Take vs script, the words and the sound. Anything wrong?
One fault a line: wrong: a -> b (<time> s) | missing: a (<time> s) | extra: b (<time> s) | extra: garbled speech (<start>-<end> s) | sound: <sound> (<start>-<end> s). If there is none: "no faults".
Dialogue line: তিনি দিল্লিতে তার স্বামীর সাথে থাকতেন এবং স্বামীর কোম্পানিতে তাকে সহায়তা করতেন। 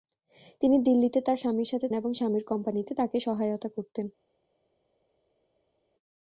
missing: থাকতেন (1.9 s)